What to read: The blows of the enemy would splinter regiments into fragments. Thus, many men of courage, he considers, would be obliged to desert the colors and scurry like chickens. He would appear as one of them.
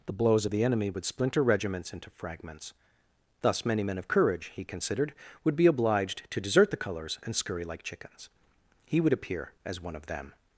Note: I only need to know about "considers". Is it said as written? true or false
false